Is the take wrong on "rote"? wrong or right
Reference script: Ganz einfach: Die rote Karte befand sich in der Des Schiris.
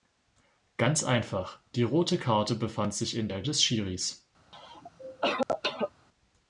right